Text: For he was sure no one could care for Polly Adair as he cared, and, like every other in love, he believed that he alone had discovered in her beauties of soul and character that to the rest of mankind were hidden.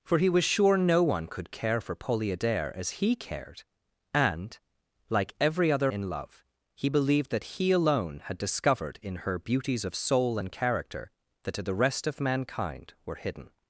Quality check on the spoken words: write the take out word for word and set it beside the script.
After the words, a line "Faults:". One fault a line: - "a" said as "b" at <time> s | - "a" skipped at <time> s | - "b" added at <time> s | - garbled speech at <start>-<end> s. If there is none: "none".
For he was sure no one could care for Polly Adair as he cared, and, like every other in love, he believed that he alone had discovered in her beauties of soul and character that to the rest of mankind were hidden.
Faults:
none